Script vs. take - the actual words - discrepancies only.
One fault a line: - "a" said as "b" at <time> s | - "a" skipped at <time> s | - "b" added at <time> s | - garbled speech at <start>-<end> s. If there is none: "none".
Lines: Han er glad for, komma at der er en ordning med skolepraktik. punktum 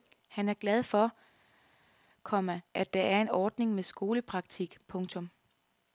none